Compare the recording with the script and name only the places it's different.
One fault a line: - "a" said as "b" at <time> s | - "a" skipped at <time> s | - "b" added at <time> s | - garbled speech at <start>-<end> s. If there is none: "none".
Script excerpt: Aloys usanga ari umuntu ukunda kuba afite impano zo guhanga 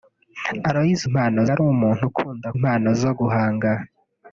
- "usanga" said as "impano" at 1.1 s
- "kuba afite" skipped at 2.5 s